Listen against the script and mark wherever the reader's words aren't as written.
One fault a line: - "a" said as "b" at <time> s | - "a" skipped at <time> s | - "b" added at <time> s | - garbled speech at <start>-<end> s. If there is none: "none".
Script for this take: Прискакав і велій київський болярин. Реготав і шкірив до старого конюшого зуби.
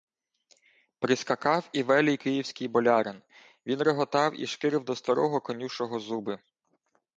- "Він" added at 3.6 s